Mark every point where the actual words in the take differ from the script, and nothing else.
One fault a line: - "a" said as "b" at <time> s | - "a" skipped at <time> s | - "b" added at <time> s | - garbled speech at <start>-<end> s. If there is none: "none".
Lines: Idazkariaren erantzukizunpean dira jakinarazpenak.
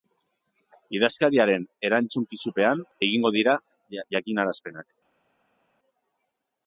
- "egingo" added at 3.1 s